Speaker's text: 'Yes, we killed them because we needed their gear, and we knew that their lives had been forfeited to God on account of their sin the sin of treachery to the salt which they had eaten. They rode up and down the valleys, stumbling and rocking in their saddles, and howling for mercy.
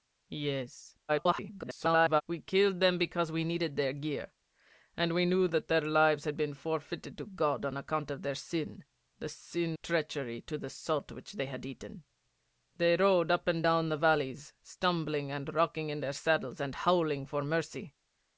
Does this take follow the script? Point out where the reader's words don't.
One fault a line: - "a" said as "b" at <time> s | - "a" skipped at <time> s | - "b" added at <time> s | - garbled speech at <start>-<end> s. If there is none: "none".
- garbled speech at 1.1-2.2 s
- "of" skipped at 9.8 s